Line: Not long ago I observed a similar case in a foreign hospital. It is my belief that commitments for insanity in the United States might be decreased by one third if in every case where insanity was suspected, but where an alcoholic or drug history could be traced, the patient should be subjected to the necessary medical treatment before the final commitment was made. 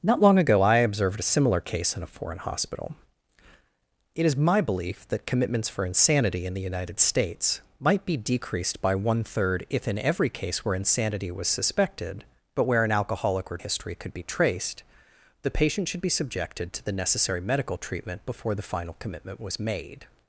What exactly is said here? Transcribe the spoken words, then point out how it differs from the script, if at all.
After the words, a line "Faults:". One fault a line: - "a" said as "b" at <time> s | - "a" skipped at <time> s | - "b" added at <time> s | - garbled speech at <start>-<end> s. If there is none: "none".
Not long ago I observed a similar case in a foreign hospital. It is my belief that commitments for insanity in the United States might be decreased by one third if in every case where insanity was suspected, but where an alcoholic or history could be traced, the patient should be subjected to the necessary medical treatment before the final commitment was made.
Faults:
- "drug" skipped at 13.6 s